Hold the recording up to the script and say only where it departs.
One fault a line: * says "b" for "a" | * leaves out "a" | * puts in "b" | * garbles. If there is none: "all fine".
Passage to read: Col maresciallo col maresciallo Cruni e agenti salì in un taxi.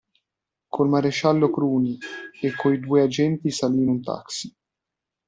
* says "Cruni e coi due" for "col maresciallo Cruni e"